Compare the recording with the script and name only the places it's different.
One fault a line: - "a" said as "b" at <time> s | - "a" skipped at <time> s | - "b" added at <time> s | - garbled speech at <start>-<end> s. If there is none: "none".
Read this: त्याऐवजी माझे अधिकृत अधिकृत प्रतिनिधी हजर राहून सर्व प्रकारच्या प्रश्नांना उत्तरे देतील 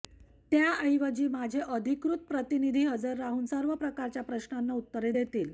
- "अधिकृत" skipped at 2.2 s